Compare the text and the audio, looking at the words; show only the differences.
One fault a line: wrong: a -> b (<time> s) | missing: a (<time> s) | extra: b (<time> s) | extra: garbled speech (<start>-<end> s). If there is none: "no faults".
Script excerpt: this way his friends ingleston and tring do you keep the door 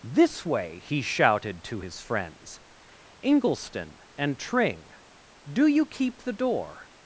extra: he shouted to (0.8 s)